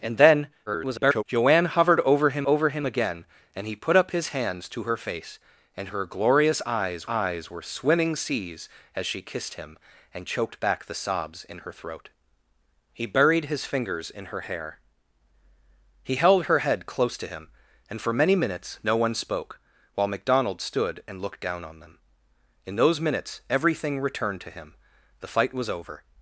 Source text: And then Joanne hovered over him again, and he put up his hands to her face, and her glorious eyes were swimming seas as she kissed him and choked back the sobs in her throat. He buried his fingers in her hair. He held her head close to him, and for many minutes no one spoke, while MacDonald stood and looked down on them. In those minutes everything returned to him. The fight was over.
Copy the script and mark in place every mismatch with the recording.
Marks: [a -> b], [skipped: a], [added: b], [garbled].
And then [garbled] Joanne hovered over him [added: over him] again, and he put up his hands to her face, and her glorious eyes [added: eyes] were swimming seas as she kissed him and choked back the sobs in her throat. He buried his fingers in her hair. He held her head close to him, and for many minutes no one spoke, while MacDonald stood and looked down on them. In those minutes everything returned to him. The fight was over.